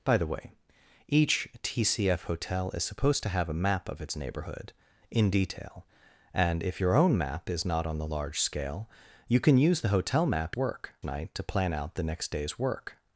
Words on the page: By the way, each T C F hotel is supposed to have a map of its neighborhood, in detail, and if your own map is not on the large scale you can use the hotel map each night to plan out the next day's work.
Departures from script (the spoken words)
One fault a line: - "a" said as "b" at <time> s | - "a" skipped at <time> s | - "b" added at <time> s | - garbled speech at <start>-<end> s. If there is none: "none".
- "each" said as "work" at 10.6 s